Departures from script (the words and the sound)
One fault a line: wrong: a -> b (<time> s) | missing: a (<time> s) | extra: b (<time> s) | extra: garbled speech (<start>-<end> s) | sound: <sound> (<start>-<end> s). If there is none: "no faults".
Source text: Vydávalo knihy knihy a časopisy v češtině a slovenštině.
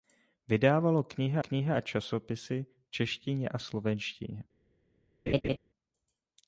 sound: laugh (5.3-5.6 s)